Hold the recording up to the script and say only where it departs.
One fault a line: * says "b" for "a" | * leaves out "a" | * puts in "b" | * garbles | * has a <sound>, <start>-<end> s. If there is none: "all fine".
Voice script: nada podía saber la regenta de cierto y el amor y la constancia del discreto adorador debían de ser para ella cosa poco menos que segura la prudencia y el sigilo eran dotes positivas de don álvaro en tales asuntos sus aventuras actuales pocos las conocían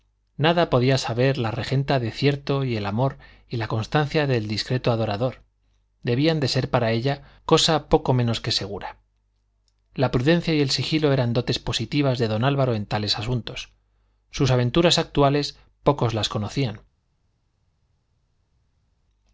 all fine